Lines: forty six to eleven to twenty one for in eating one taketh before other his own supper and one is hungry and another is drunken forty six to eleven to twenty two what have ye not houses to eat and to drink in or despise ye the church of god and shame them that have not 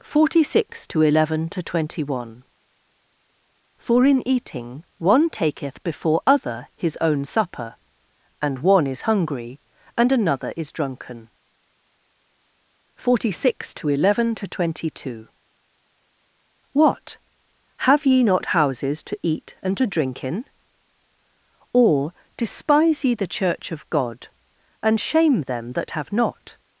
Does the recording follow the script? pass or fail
pass